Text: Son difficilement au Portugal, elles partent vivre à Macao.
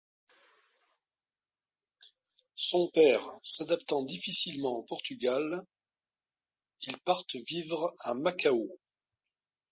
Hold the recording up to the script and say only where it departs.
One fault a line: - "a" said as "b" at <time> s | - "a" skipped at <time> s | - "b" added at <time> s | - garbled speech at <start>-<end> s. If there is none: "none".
- "père s'adaptant" added at 2.9 s
- "elles" said as "ils" at 6.8 s